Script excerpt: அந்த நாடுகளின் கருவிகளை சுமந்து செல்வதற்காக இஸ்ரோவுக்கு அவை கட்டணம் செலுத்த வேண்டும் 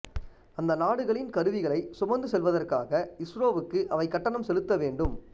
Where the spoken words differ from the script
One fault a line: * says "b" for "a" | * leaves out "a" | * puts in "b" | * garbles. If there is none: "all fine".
all fine